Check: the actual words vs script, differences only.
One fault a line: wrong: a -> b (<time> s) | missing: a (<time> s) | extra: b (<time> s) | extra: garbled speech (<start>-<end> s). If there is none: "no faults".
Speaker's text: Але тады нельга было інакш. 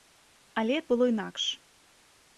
missing: тады нельга (0.8 s)